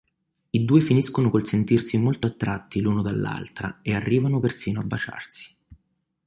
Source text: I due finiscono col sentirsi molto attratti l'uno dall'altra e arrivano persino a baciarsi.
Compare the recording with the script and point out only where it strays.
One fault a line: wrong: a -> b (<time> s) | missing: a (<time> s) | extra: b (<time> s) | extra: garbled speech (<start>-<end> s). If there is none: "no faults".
no faults